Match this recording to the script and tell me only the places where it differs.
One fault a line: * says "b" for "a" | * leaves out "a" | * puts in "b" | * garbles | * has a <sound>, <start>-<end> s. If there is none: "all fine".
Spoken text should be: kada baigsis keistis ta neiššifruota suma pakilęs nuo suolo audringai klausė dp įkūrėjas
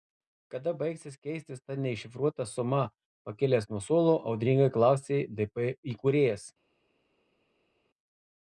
all fine